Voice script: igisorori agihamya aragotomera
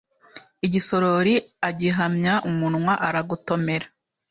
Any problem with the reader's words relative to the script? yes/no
yes